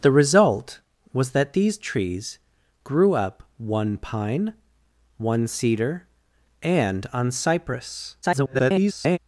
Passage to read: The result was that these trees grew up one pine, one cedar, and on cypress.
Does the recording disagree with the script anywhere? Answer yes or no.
yes